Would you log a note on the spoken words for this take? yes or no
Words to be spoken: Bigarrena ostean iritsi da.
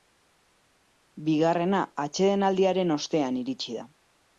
yes